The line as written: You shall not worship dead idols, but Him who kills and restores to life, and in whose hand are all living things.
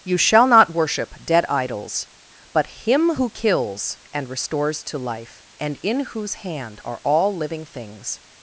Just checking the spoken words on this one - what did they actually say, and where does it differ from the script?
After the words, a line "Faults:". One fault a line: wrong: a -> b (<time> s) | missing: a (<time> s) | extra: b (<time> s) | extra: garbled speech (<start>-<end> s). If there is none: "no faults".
You shall not worship dead idols, but Him who kills and restores to life, and in whose hand are all living things.
Faults:
no faults